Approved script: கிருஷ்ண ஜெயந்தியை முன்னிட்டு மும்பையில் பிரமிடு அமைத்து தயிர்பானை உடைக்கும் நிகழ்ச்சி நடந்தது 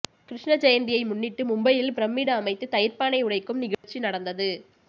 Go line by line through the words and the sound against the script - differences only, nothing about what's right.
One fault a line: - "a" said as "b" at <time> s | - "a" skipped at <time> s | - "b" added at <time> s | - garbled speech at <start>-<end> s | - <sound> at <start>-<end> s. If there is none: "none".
- dropout at 3.7-3.8 s